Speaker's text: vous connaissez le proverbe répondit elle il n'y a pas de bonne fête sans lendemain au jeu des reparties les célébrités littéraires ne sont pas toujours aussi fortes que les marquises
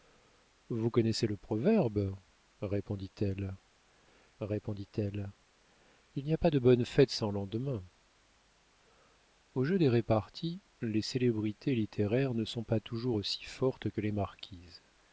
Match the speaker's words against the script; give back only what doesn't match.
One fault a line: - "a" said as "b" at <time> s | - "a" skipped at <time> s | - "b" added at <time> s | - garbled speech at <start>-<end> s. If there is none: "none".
- "répondit elle" added at 4.4 s